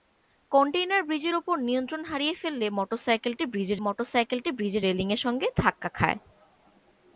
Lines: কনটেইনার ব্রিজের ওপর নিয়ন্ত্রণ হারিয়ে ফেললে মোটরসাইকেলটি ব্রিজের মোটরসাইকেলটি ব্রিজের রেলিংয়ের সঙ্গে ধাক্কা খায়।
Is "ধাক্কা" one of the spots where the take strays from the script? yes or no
no